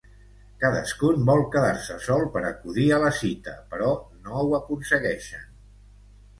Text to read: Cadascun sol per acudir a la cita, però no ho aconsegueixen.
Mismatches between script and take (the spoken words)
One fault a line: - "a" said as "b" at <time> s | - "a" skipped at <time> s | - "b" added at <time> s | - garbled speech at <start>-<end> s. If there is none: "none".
- "vol quedar se" added at 1.3 s